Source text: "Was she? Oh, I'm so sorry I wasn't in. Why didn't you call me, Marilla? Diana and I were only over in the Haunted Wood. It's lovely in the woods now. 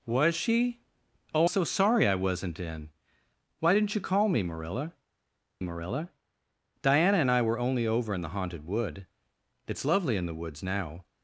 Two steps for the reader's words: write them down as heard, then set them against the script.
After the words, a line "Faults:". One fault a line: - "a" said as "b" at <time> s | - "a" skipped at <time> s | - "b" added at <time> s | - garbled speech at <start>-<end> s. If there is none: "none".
"Was she? Oh, So sorry I wasn't in. Why didn't you call me, Marilla Marilla? Diana and I were only over in the Haunted Wood. It's lovely in the woods now.
Faults:
- "I'm" skipped at 1.5 s
- "Marilla" added at 5.6 s